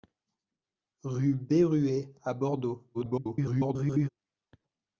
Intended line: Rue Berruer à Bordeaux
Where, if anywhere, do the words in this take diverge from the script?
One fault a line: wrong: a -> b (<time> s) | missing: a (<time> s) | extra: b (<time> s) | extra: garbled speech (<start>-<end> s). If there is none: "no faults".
extra: garbled speech (2.9-4.1 s)